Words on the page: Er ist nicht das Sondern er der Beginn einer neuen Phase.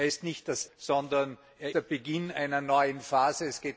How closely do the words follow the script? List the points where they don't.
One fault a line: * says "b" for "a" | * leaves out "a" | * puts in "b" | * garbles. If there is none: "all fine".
all fine